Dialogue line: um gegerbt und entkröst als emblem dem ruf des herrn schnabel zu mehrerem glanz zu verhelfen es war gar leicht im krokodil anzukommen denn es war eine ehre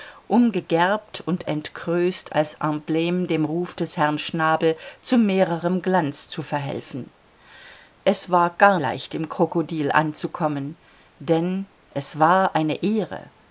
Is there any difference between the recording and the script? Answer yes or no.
no